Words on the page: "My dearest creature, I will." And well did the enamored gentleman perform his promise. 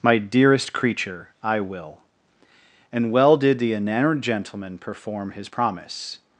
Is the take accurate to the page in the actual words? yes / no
yes